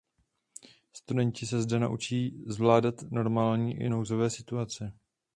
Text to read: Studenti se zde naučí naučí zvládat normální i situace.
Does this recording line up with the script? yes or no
no